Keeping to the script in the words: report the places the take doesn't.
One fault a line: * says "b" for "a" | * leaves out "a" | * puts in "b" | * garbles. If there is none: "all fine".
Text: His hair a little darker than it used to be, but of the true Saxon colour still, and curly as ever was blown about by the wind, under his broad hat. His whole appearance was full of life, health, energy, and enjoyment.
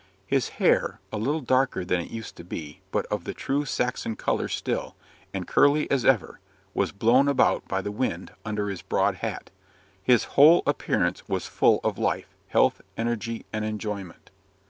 all fine